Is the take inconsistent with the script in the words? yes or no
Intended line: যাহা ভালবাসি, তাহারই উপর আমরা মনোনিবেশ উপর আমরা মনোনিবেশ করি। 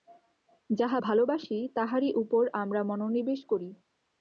yes